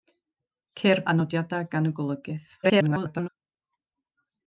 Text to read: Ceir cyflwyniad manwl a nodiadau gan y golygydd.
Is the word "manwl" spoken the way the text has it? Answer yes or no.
no